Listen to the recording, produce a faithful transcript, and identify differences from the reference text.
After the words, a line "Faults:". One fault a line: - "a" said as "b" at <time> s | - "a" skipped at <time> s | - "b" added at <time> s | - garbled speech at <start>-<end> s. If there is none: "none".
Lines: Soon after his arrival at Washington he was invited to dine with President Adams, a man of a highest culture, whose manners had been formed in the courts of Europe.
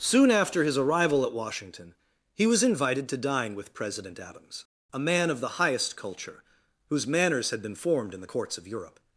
Soon after his arrival at Washington he was invited to dine with President Adams, a man of the highest culture, whose manners had been formed in the courts of Europe.
Faults:
- "a" said as "the" at 5.4 s